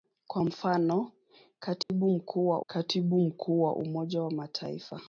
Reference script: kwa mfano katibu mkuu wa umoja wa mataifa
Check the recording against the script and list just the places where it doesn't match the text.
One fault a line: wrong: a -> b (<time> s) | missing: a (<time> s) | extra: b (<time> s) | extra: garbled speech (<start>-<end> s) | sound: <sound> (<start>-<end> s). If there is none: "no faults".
sound: dropout (1.8-1.9 s)
extra: katibu mkuu wa (2.7 s)